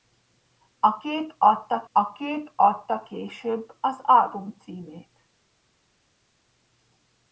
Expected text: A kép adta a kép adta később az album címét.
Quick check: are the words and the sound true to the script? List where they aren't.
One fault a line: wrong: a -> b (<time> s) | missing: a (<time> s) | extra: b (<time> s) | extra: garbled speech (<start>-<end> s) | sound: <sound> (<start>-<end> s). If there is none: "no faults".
no faults